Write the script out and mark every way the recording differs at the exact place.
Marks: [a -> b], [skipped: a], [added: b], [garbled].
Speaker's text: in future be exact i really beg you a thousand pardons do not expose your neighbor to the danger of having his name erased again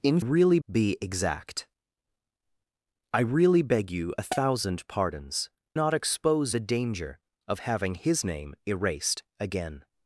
in [future -> really] be exact i really beg you a thousand pardons [skipped: do] not expose [skipped: your neighbor to] the danger of having his name erased again